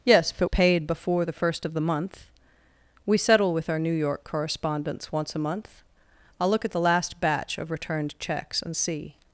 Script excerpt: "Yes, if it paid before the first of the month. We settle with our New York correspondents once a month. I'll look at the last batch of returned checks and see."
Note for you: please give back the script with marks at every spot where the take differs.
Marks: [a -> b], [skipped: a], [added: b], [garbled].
"Yes, if it paid before the first of the month. We settle with our New York correspondents once a month. I'll look at the last batch of returned checks and see."